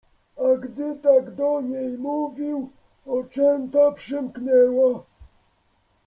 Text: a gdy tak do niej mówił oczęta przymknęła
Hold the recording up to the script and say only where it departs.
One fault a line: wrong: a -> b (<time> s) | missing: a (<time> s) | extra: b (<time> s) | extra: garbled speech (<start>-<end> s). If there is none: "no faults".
no faults